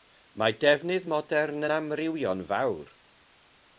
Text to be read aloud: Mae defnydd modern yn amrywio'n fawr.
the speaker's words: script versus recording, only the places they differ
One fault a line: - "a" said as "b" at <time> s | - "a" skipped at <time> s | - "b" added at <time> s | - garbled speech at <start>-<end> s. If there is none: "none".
none